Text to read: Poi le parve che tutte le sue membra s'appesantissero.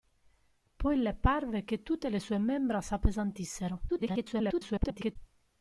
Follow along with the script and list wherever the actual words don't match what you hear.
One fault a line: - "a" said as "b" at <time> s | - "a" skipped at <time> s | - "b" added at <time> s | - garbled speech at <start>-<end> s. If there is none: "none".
- garbled speech at 3.9-5.2 s